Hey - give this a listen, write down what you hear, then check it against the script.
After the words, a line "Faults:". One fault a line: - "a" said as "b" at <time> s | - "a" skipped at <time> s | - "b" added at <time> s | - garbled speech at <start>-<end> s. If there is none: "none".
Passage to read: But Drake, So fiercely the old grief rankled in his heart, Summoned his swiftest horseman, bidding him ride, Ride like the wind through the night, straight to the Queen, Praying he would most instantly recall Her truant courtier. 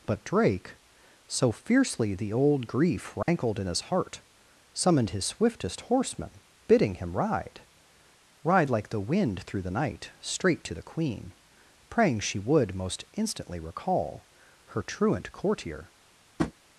But Drake, So fiercely the old grief rankled in his heart, Summoned his swiftest horseman, bidding him ride, Ride like the wind through the night, straight to the Queen, Praying she would most instantly recall Her truant courtier.
Faults:
- "he" said as "she" at 12.2 s